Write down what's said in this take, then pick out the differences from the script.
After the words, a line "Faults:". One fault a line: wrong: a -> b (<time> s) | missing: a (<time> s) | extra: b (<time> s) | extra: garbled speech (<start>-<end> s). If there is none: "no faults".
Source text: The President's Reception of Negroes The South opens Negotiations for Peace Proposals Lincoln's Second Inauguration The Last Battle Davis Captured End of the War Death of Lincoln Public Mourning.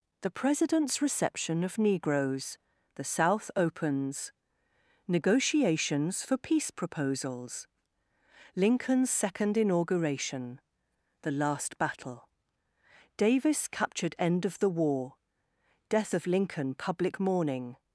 The President's Reception of Negroes The South opens Negotiations for Peace Proposals Lincoln's Second Inauguration The Last Battle Davis Captured End of the War Death of Lincoln Public Mourning.
Faults:
no faults